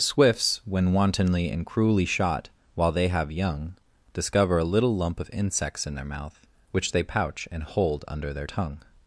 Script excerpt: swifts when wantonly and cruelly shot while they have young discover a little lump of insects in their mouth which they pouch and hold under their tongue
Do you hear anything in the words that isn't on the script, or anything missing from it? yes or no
no